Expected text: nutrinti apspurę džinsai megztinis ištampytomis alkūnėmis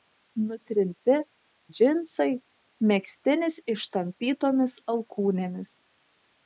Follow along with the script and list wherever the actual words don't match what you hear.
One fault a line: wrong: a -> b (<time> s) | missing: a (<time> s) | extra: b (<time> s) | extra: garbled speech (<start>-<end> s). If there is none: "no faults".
missing: apspurę (1.2 s)